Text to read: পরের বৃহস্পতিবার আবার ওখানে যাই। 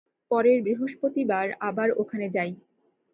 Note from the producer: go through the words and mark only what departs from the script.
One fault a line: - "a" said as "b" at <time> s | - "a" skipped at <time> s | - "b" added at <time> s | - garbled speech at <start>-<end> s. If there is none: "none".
none